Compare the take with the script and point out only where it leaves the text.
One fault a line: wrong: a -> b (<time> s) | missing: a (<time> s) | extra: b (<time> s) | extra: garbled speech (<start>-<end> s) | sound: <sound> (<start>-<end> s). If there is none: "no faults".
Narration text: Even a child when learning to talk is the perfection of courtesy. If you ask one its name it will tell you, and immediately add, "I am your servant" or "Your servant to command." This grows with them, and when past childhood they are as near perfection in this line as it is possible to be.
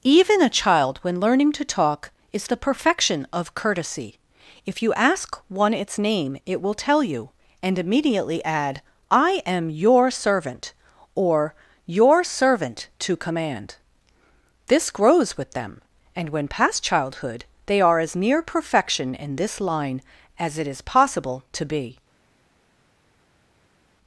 no faults